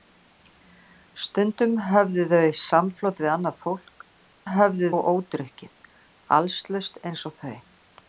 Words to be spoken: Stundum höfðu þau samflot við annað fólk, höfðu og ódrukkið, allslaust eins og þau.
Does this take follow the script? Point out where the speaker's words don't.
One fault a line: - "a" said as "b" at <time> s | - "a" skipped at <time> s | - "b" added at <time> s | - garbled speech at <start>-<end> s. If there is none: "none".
none